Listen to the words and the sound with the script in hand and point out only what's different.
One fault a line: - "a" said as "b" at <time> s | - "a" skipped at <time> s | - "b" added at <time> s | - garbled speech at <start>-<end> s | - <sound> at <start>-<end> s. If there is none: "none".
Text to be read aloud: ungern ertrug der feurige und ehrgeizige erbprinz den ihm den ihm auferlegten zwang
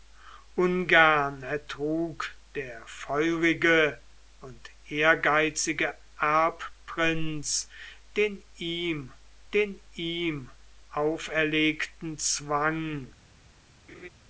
- laugh at 13.9-14.1 s